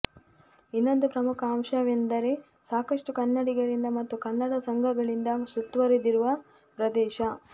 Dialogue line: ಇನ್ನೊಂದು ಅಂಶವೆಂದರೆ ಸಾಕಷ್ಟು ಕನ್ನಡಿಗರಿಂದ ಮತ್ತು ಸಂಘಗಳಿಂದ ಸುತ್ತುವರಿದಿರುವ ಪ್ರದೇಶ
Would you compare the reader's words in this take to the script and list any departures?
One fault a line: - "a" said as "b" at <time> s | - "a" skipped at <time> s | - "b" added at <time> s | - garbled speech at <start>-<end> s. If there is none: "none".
- "ಪ್ರಮುಖ" added at 1.1 s
- "ಕನ್ನಡ" added at 4.3 s